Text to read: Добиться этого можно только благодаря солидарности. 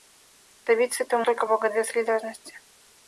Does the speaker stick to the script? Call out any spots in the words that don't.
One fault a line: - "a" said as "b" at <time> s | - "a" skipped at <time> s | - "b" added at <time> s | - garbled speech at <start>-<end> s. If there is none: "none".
- "можно" skipped at 1.2 s